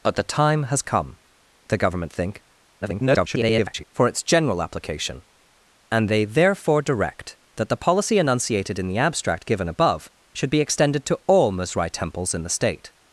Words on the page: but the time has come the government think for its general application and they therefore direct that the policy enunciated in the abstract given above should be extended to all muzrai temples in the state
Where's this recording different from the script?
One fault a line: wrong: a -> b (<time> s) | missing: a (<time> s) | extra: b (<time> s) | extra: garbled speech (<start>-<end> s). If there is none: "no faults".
extra: garbled speech (2.8-3.8 s)